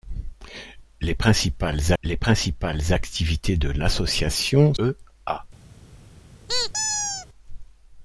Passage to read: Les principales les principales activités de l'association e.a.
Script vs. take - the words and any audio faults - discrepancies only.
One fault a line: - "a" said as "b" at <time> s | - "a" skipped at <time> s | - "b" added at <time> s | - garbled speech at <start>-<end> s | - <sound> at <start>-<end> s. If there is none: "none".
- squeak at 6.5-7.3 s